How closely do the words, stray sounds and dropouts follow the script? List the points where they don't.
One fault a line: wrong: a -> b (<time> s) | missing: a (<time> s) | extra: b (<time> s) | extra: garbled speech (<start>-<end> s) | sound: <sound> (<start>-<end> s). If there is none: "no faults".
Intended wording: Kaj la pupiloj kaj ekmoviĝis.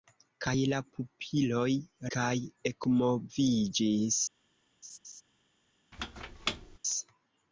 sound: laugh (4.8-5.2 s)
sound: squeak (5.9-6.8 s)